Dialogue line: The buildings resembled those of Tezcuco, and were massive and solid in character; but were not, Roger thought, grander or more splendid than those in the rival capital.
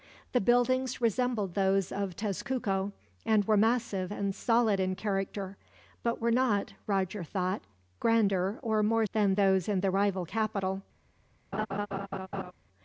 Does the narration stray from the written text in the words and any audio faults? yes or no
yes